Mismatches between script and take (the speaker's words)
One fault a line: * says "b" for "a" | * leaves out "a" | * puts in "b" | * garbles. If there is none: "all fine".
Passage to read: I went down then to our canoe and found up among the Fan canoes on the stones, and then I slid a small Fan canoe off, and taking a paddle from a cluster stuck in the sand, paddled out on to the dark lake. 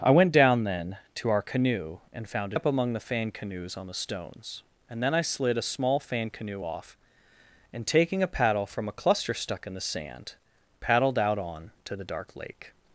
all fine